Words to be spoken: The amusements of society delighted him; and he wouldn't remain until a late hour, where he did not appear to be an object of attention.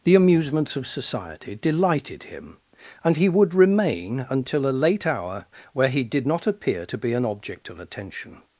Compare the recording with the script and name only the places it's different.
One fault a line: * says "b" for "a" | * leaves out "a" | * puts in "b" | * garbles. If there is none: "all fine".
* says "would" for "wouldn't"